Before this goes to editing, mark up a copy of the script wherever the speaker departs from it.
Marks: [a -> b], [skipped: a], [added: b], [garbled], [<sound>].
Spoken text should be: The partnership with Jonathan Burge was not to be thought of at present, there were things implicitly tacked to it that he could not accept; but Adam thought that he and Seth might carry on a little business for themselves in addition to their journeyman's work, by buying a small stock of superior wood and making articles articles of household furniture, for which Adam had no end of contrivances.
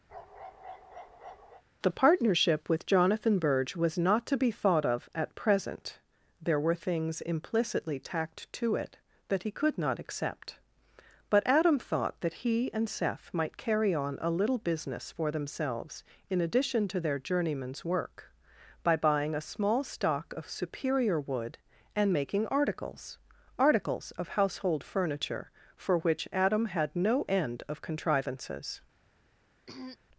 [bark] The partnership with Jonathan Burge was not to be thought of at present, there were things implicitly tacked to it that he could not accept; but Adam thought that he and Seth might carry on a little business for themselves in addition to their journeyman's work, by buying a small stock of superior wood and making articles articles of household furniture, for which Adam had no end of contrivances. [throat clearing]